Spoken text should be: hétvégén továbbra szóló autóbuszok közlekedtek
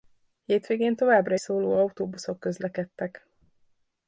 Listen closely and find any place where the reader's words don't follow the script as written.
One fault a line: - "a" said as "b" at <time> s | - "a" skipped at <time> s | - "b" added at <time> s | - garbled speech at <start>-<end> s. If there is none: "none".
none